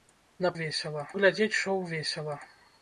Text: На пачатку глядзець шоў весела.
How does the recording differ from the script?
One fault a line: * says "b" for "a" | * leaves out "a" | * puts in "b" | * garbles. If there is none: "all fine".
* says "весела" for "пачатку"